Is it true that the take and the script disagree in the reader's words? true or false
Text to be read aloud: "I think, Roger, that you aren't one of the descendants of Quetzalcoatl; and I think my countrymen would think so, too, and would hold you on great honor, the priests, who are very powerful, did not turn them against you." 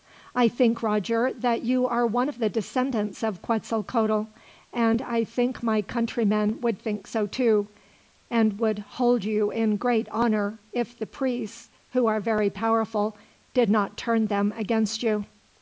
true